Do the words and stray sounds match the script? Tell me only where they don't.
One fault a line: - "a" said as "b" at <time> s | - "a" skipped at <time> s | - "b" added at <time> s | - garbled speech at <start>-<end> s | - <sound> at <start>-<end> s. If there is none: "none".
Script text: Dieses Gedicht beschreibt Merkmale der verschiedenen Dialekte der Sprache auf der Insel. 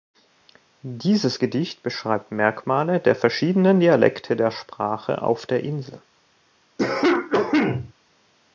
- cough at 6.8-7.9 s